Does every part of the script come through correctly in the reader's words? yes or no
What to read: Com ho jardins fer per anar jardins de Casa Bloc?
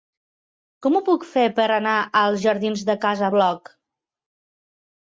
no